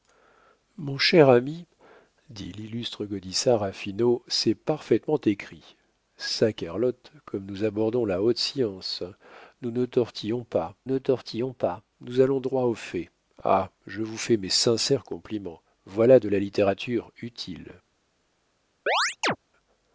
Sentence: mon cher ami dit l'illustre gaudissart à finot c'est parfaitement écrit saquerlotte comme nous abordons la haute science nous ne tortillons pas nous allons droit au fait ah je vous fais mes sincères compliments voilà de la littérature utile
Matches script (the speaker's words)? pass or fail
fail